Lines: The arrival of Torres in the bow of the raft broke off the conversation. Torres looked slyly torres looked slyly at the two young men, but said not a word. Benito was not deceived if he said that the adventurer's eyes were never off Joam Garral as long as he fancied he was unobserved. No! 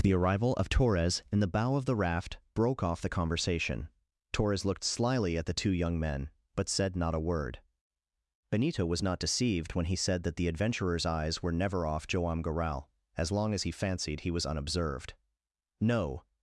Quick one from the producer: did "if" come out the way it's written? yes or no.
no